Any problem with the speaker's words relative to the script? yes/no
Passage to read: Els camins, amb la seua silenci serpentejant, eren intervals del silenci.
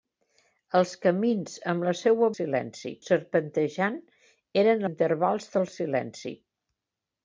no